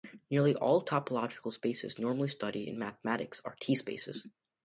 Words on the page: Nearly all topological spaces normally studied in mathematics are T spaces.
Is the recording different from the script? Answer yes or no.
no